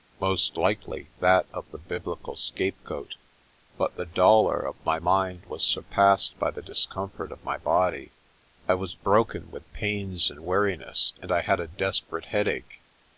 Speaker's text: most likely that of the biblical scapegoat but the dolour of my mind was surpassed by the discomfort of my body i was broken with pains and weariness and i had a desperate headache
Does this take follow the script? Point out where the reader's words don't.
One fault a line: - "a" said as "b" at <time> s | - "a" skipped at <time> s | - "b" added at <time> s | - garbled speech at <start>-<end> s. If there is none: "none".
none